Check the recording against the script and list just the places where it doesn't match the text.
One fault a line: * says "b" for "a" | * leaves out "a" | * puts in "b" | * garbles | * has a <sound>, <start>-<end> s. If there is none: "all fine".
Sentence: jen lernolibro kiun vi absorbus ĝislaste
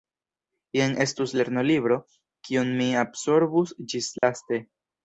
* puts in "estus"
* says "mi" for "vi"
* has a dropout, 4.2-4.2 s